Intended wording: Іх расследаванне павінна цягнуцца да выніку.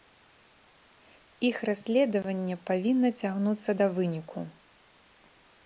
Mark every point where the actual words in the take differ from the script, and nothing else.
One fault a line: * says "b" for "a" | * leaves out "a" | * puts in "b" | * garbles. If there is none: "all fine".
all fine